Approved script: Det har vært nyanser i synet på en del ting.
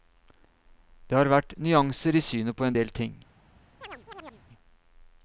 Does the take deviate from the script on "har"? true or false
false